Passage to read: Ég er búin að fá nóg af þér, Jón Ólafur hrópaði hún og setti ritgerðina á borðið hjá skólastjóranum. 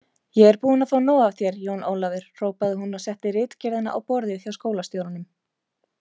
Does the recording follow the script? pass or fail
pass